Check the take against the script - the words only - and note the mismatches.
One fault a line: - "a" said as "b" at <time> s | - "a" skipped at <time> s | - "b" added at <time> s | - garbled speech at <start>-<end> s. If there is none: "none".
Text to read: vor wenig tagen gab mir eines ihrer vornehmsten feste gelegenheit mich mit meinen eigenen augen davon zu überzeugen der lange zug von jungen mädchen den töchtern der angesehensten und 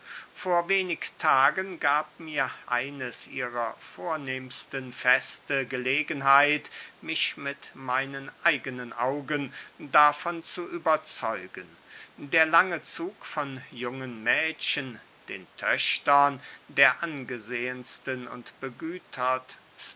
none